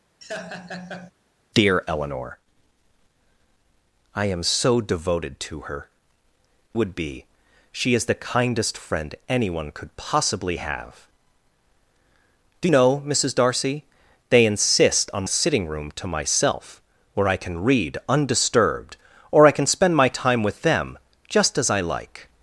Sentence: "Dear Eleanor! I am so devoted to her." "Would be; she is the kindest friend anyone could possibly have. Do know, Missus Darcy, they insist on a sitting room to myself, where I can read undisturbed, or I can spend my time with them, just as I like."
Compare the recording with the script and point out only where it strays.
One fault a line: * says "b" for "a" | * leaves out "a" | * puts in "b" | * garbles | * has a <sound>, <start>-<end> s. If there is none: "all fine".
* has a laugh, 0.2-1.1 s